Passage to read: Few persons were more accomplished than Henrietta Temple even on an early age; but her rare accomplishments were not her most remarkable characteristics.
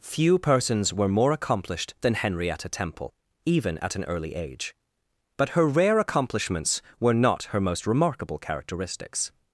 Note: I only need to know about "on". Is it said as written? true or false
false